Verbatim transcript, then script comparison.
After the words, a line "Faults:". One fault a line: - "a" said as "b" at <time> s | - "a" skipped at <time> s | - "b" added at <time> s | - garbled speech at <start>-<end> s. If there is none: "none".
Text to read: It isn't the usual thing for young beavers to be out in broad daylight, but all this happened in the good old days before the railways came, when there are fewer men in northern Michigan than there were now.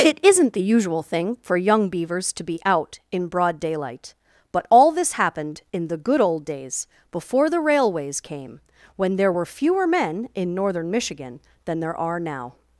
It isn't the usual thing for young beavers to be out in broad daylight, but all this happened in the good old days before the railways came, when there were fewer men in northern Michigan than there are now.
Faults:
- "are" said as "were" at 9.3 s
- "were" said as "are" at 12.0 s